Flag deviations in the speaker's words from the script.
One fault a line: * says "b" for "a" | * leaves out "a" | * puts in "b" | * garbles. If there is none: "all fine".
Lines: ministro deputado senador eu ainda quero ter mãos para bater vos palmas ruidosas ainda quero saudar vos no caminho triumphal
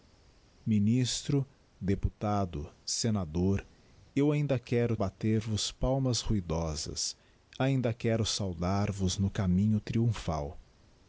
* leaves out "ter mãos para"